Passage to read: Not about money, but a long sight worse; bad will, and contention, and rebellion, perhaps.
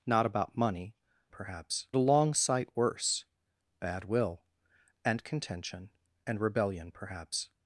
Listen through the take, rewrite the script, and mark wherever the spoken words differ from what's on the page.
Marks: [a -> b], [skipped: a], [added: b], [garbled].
Not about money, [but -> perhaps] a long sight worse; bad will, and contention, and rebellion, perhaps.